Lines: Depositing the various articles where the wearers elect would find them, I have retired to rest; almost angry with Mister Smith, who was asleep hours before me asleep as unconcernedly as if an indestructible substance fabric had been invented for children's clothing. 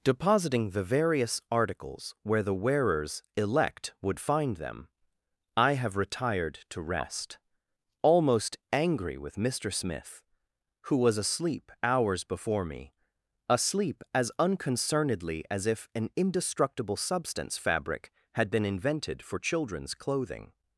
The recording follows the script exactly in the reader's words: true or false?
true